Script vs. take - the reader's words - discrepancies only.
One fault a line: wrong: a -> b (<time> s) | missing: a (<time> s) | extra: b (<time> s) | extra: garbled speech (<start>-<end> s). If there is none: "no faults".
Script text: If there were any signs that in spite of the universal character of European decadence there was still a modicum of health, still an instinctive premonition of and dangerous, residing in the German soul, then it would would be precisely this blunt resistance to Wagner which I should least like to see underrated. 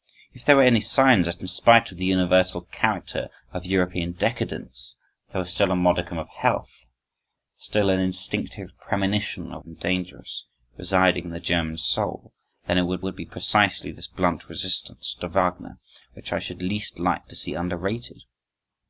no faults